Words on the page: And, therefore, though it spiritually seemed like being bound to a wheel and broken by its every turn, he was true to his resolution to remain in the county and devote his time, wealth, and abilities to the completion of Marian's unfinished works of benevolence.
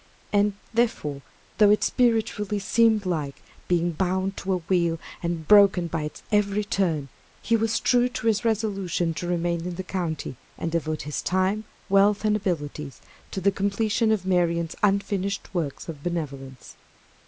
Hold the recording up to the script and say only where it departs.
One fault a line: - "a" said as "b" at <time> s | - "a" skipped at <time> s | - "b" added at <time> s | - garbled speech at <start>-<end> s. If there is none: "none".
none